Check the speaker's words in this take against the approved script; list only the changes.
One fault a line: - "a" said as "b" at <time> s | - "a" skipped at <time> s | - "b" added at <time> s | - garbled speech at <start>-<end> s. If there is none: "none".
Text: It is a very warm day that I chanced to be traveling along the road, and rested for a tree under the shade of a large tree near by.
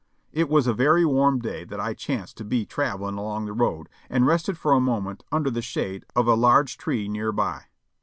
- "is" said as "was" at 0.5 s
- "tree" said as "moment" at 4.8 s